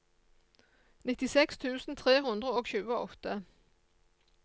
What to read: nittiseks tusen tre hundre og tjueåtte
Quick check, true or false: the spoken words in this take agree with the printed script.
true